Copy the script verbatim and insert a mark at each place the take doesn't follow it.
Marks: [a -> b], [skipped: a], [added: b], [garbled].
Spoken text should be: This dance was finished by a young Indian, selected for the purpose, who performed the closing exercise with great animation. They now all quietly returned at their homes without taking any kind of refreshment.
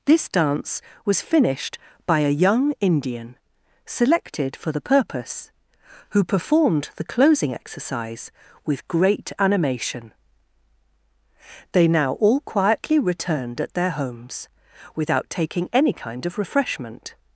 This dance was finished by a young Indian, selected for the purpose, who performed the closing exercise with great animation. They now all quietly returned at their homes without taking any kind of refreshment.